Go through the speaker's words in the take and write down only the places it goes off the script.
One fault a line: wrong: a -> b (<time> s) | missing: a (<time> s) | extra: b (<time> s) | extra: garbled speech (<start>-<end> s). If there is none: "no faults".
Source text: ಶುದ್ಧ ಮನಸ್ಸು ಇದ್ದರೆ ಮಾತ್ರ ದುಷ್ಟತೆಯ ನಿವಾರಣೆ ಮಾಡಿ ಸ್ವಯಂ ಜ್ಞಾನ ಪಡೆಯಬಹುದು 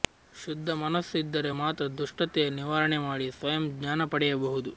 no faults